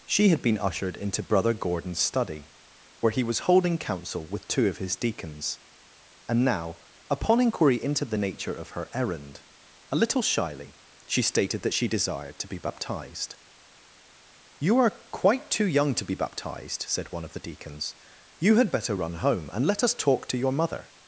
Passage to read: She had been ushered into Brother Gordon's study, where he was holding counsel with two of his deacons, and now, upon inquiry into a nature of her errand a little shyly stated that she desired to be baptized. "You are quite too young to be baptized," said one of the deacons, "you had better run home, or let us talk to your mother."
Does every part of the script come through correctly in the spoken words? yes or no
no